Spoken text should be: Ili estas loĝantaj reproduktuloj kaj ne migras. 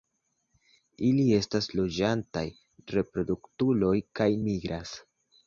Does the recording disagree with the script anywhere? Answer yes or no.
yes